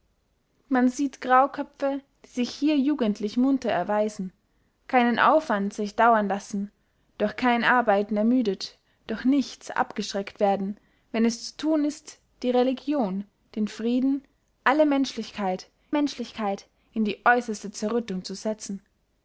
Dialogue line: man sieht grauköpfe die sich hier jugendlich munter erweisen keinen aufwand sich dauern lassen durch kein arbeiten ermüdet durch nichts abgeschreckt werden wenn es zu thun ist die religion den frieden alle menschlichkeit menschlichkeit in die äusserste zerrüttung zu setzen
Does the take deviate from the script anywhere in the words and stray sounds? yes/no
no